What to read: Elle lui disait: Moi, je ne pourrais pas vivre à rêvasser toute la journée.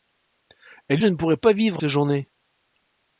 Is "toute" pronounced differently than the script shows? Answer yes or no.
yes